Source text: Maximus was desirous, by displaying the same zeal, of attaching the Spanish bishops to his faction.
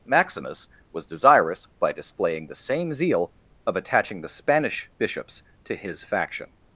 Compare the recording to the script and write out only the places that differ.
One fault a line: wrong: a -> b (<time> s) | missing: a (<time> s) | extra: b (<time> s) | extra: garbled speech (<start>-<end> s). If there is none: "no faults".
no faults